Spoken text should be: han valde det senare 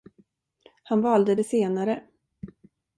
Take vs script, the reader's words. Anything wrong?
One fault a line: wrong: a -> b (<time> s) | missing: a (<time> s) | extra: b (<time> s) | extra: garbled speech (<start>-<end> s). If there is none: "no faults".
no faults